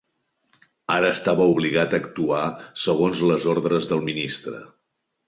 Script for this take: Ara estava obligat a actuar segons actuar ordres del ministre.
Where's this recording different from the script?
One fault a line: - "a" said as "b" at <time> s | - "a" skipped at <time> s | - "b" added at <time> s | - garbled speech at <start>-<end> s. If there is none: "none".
- "actuar" said as "les" at 3.3 s